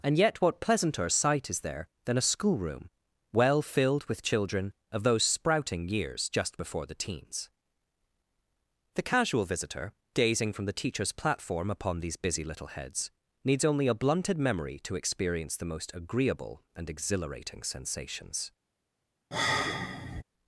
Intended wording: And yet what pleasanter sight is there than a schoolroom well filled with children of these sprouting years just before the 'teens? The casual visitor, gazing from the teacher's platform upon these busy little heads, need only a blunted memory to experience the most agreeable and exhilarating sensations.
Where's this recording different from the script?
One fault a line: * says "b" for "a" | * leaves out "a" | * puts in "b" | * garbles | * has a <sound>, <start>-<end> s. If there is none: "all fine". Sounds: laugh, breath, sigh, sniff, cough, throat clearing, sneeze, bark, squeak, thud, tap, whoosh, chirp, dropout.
* says "those" for "these"
* says "needs" for "need"
* has a sigh, 19.3-20.2 s